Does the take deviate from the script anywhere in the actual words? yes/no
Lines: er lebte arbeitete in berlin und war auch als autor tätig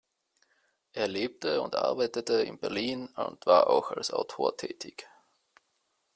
yes